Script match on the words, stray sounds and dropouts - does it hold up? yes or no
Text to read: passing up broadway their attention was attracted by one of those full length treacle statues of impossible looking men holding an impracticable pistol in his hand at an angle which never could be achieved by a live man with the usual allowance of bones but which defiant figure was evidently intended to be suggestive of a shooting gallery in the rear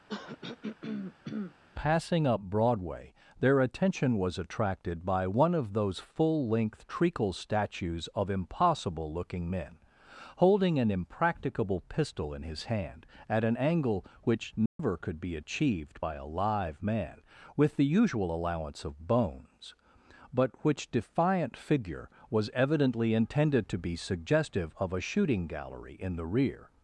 no